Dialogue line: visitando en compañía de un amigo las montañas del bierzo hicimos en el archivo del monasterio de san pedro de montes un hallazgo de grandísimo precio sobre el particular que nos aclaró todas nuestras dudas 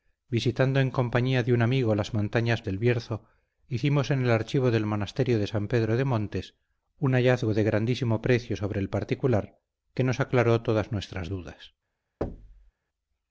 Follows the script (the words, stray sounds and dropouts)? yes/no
no